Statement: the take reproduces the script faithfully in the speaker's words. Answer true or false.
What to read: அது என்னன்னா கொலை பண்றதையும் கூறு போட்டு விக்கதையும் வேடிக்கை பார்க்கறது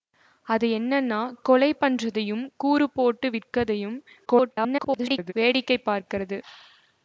false